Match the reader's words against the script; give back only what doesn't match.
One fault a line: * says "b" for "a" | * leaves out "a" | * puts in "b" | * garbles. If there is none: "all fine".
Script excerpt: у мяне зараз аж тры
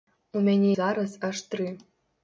all fine